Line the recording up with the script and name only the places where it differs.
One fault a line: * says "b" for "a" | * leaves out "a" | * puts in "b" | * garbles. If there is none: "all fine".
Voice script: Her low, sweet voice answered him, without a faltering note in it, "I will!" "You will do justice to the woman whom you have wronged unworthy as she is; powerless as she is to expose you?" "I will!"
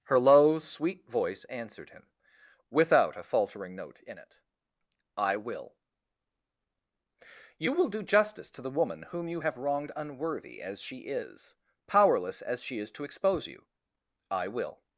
all fine